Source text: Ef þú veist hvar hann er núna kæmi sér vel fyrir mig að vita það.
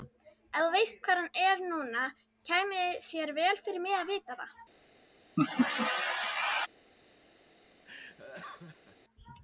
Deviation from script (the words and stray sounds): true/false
true